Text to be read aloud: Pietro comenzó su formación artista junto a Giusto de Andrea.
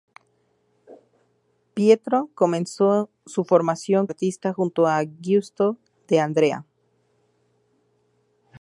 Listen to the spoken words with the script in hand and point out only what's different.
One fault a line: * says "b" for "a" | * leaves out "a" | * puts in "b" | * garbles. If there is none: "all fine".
all fine